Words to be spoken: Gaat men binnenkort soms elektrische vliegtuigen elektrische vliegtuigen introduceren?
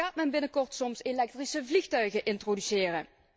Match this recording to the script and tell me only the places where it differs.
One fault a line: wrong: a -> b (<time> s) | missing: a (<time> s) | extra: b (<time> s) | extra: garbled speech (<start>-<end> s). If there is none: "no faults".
missing: elektrische vliegtuigen (2.2 s)